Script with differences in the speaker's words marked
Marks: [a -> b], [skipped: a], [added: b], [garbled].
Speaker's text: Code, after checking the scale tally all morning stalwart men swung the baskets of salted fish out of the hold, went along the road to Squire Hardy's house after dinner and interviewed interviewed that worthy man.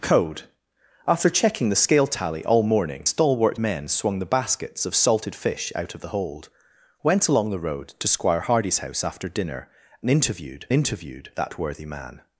Code, after checking the scale tally all morning stalwart men swung the baskets of salted fish out of the hold, went along the road to Squire Hardy's house after dinner and interviewed interviewed that worthy man.